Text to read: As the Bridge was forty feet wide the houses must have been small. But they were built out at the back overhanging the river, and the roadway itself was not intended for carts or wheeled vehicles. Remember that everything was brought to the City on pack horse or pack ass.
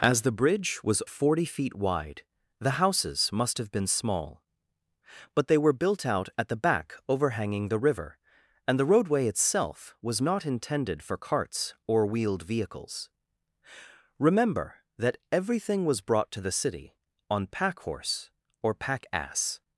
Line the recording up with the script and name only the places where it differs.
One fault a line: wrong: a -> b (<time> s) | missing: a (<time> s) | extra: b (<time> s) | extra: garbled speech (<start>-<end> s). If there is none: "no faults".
no faults